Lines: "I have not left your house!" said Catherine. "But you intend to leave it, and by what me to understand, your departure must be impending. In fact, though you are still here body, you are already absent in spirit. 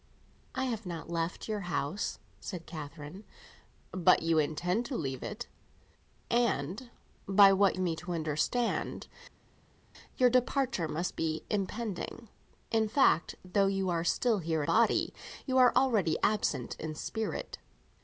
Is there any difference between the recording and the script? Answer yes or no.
no